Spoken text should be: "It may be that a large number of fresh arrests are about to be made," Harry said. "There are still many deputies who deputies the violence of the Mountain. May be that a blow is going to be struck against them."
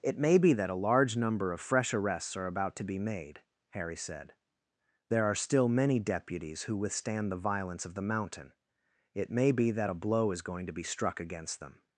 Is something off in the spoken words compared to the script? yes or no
yes